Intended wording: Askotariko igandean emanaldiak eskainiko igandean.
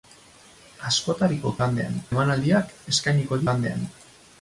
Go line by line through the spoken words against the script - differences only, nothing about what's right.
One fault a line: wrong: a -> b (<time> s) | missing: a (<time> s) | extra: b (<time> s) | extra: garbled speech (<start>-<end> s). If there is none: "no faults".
no faults